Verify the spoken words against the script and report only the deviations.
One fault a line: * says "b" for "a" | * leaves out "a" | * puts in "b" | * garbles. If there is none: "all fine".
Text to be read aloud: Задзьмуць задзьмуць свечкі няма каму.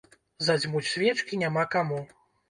* leaves out "задзьмуць"